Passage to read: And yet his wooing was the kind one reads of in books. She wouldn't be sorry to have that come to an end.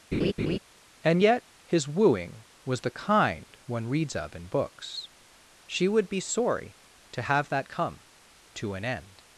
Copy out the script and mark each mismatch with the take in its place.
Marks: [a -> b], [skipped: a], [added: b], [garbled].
And yet his wooing was the kind one reads of in books. She [wouldn't -> would] be sorry to have that come to an end.